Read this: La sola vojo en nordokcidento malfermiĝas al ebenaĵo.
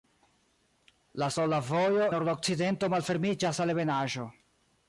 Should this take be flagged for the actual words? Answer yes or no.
yes